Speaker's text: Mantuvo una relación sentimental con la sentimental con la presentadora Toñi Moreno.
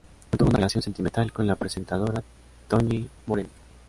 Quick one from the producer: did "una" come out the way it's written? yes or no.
yes